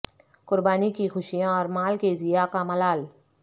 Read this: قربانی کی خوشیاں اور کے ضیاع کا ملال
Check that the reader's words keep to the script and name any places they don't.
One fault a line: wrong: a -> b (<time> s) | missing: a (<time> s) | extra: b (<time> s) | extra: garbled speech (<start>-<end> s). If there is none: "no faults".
extra: مال (1.7 s)